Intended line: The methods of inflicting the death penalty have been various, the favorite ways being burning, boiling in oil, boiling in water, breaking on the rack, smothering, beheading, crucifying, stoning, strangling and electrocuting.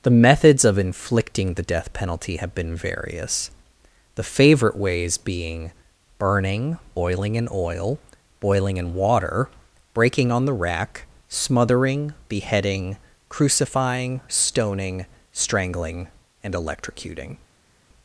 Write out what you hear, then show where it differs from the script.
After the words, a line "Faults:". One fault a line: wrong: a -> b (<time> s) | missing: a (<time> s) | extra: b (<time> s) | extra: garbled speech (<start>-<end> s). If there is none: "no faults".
The methods of inflicting the death penalty have been various, the favorite ways being burning, boiling in oil, boiling in water, breaking on the rack, smothering, beheading, crucifying, stoning, strangling and electrocuting.
Faults:
no faults